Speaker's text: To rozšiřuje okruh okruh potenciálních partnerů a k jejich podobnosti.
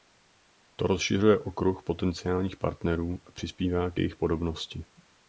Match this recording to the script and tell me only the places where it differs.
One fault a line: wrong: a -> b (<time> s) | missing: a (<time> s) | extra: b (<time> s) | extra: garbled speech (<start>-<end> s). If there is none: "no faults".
missing: okruh (1.8 s)
extra: přispívá (3.3 s)